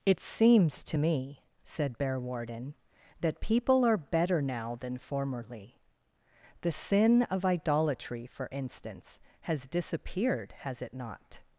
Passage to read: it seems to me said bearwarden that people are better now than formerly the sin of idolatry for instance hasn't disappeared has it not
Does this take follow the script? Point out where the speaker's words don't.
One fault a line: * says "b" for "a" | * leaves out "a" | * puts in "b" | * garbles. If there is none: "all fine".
* says "has" for "hasn't"